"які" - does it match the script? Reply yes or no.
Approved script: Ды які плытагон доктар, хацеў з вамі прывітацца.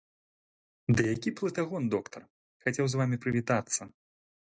yes